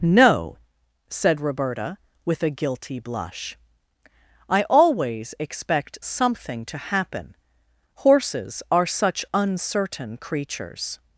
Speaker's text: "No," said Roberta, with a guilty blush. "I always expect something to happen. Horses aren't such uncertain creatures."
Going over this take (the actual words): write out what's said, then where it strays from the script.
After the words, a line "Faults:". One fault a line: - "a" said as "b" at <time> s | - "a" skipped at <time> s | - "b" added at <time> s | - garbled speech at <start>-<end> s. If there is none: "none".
"No," said Roberta, with a guilty blush. "I always expect something to happen. Horses are such uncertain creatures."
Faults:
- "aren't" said as "are" at 8.7 s